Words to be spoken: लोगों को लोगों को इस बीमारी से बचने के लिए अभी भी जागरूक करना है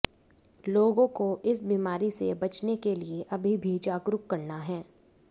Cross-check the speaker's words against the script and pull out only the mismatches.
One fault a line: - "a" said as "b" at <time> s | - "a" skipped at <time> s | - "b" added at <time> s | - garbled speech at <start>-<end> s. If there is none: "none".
- "लोगों को" skipped at 1.3 s